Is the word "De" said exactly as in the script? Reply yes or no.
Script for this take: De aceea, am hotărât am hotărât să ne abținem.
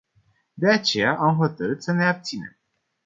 yes